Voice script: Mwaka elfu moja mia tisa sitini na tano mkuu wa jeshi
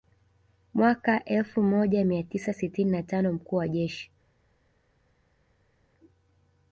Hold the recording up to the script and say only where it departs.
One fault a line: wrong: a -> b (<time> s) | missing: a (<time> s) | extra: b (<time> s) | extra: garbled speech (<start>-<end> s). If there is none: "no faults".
no faults